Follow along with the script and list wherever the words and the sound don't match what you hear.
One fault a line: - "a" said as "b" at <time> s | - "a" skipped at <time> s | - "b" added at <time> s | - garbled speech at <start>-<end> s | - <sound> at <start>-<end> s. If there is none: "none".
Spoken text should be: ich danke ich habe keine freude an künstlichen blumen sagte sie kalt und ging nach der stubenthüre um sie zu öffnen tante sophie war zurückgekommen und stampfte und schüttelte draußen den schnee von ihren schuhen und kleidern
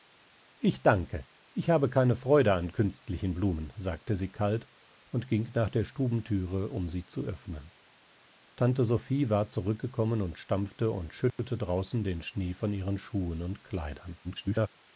- dropout at 11.3-11.4 s
- garbled speech at 14.2-14.7 s